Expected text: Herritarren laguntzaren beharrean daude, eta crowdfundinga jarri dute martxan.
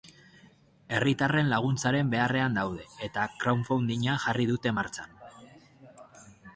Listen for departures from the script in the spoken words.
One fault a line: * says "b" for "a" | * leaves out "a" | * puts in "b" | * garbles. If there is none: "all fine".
all fine